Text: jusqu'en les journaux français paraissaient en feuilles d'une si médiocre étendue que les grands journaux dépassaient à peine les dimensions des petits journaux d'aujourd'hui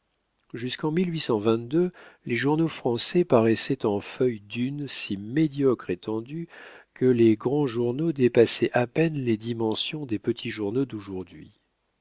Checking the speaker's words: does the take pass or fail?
pass